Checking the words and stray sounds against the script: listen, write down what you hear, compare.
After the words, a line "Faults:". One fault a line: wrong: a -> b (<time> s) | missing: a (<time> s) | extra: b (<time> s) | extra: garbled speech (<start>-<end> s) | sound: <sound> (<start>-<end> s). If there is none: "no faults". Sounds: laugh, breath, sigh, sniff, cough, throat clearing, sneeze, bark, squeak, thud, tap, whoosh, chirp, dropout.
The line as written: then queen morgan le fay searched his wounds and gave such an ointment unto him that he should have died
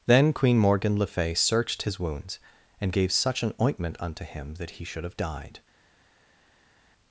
then queen morgan le fay searched his wounds and gave such an ointment unto him that he should have died
Faults:
no faults